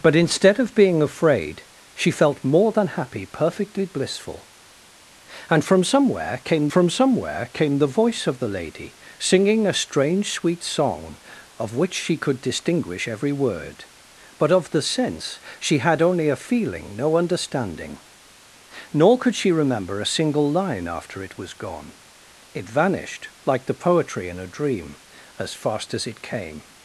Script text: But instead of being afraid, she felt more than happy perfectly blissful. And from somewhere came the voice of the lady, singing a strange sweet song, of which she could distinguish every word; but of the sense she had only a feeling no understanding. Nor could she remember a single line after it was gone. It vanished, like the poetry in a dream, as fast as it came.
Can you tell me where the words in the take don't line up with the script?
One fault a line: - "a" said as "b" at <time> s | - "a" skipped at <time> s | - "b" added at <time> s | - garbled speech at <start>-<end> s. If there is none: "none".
- "from somewhere came" added at 6.7 s